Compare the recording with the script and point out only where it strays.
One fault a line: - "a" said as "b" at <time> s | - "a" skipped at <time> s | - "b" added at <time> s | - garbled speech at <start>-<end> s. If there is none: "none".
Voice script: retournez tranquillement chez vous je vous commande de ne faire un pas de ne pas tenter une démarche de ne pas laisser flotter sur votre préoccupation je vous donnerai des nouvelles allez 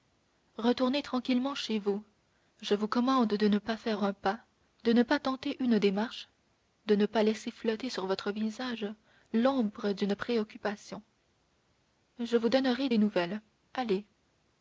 - "pas" added at 3.6 s
- "visage l'ombre d'une" added at 8.3 s